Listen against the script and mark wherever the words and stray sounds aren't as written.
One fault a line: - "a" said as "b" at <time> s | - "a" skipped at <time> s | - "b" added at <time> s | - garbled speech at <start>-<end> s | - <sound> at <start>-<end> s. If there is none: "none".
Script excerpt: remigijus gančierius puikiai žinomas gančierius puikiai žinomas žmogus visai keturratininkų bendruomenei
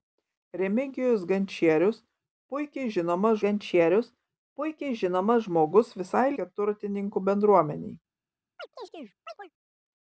- chirp at 8.6-9.5 s